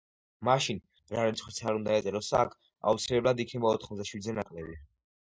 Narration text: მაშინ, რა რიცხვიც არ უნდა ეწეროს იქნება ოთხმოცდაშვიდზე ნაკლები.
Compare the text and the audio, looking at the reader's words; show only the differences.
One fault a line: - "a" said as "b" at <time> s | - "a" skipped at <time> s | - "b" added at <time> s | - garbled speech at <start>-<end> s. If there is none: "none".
- "აქ აუცილებლად" added at 2.4 s